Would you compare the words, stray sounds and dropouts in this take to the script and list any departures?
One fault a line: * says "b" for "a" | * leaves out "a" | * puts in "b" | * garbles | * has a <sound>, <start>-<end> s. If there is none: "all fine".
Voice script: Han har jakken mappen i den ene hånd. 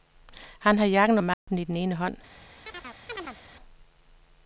* has a dropout, 1.3-1.5 s
* has a chirp, 2.7-3.4 s